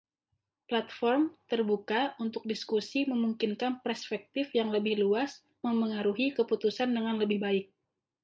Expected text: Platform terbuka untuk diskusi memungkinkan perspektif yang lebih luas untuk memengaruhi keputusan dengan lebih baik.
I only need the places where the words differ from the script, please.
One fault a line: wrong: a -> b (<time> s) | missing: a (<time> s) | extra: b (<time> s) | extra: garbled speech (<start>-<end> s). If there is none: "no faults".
missing: untuk (5.5 s)